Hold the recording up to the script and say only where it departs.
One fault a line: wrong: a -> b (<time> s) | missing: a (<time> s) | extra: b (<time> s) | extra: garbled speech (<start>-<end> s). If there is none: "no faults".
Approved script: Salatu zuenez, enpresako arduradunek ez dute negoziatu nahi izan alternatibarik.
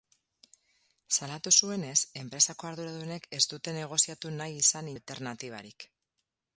no faults